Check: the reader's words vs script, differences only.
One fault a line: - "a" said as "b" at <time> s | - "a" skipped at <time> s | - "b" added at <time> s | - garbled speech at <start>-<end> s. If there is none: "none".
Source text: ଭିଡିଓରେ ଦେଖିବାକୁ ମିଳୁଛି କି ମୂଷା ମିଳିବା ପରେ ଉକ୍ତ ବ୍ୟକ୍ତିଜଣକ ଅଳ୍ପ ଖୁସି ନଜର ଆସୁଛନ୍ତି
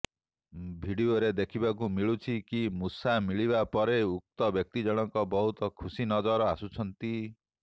- "ଅଳ୍ପ" said as "ବହୁତ" at 5.3 s